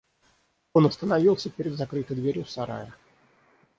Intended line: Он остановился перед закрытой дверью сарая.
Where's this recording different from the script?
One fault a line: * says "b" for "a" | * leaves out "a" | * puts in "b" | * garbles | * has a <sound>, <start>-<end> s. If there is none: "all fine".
all fine